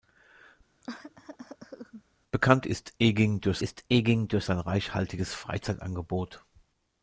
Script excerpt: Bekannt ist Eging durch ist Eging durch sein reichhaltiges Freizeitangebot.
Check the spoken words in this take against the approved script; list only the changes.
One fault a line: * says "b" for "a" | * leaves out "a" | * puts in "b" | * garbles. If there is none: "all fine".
all fine